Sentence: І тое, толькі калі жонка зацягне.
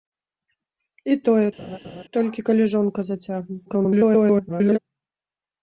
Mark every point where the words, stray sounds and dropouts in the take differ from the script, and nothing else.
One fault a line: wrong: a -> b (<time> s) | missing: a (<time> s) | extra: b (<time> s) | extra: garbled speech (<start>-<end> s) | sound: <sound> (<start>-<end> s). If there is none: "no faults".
sound: laugh (1.6-2.0 s)
extra: garbled speech (3.7-4.8 s)